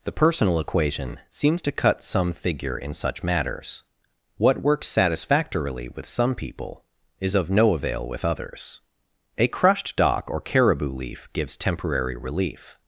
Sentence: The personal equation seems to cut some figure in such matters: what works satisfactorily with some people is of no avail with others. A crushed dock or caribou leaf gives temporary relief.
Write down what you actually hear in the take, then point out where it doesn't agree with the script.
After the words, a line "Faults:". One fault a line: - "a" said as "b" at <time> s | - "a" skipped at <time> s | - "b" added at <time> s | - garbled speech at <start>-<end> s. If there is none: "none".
The personal equation seems to cut some figure in such matters: what works satisfactorily with some people is of no avail with others. A crushed dock or caribou leaf gives temporary relief.
Faults:
none